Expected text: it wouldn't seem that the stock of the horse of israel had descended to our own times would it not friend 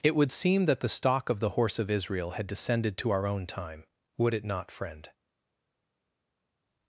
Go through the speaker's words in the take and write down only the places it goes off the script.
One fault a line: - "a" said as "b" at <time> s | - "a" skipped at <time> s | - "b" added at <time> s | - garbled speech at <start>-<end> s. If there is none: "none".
- "wouldn't" said as "would" at 0.1 s
- "times" said as "time" at 3.5 s